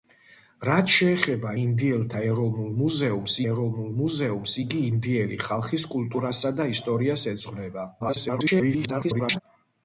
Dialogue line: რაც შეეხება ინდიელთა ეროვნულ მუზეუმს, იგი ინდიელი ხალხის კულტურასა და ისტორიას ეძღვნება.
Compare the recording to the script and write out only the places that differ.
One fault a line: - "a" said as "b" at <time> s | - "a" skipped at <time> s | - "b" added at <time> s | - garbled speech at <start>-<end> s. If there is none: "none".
- "ეროვნულ მუზეუმს" added at 3.5 s
- garbled speech at 8.0-9.4 s